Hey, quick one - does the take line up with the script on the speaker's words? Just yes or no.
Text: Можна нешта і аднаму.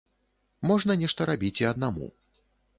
no